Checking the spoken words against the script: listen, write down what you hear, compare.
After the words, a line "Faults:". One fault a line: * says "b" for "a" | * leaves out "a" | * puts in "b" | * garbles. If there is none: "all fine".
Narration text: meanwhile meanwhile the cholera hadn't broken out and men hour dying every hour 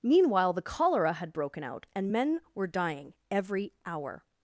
meanwhile the cholera had broken out and men were dying every hour
Faults:
* leaves out "meanwhile"
* says "had" for "hadn't"
* says "were" for "hour"